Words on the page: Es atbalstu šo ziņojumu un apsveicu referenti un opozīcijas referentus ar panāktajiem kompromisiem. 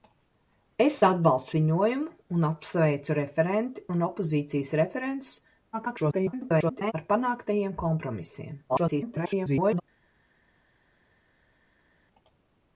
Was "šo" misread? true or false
true